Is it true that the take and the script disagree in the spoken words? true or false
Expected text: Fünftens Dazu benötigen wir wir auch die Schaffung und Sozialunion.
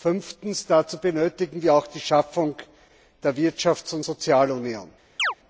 true